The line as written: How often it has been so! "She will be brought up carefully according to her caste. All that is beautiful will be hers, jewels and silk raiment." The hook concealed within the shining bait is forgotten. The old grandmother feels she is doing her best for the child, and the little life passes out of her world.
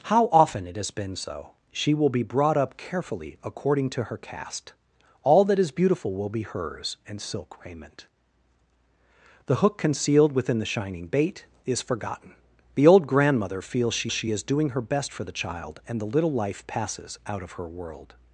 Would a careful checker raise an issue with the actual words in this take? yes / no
yes